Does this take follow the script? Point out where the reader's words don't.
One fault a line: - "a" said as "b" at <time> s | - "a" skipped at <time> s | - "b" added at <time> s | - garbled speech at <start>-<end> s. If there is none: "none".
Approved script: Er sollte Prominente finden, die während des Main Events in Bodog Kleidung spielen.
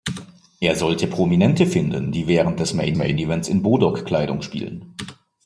- "Main" added at 2.9 s